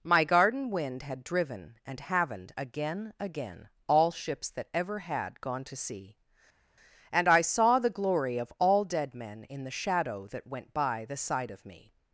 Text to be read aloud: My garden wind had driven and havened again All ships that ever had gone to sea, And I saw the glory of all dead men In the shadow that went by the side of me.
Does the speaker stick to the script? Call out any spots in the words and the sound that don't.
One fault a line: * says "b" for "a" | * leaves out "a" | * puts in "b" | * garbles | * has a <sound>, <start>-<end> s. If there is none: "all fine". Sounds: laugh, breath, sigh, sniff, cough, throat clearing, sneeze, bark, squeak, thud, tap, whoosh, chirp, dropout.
* puts in "again"